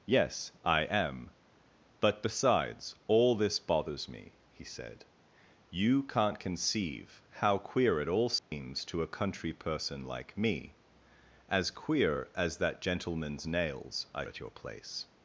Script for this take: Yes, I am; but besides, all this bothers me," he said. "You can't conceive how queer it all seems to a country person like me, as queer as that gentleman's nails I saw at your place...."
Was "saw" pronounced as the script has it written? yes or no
no